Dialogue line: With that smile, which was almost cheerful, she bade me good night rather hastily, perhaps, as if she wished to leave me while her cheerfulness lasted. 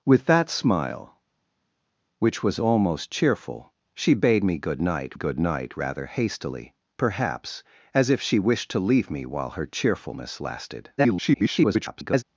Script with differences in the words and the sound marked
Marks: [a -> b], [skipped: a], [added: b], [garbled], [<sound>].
With that smile, which was almost cheerful, she bade me good night [added: good night] rather hastily, perhaps, as if she wished to leave me while her cheerfulness lasted. [garbled]